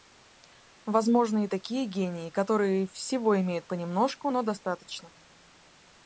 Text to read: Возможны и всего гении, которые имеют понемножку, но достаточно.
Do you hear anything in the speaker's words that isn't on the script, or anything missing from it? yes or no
yes